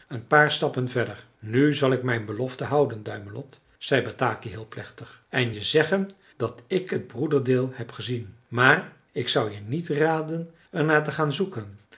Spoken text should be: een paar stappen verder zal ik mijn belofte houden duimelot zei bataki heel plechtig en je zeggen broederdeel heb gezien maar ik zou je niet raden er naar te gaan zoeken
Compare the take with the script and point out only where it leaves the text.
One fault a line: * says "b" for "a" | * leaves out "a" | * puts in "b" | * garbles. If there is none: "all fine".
* puts in "nu"
* puts in "dat ik het"